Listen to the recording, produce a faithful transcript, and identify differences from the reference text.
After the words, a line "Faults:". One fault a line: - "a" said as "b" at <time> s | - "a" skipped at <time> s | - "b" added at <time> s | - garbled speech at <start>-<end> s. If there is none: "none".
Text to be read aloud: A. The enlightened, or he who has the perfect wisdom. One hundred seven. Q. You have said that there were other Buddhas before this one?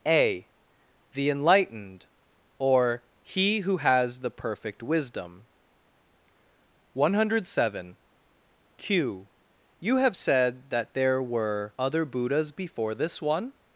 A. The enlightened, or he who has the perfect wisdom. One hundred seven. Q. You have said that there were other Buddhas before this one?
Faults:
none